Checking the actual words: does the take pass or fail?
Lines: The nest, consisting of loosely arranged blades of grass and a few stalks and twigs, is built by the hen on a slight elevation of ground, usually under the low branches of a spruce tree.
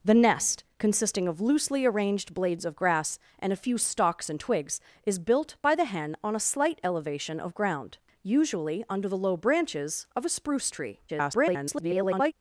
fail